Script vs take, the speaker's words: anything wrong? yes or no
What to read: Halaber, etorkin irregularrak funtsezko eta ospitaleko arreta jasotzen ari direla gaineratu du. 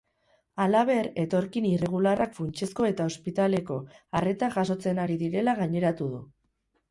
no